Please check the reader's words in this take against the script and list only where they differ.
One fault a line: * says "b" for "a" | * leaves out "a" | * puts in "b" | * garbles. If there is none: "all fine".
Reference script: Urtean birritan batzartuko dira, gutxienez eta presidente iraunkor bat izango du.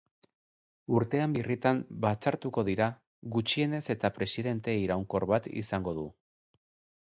all fine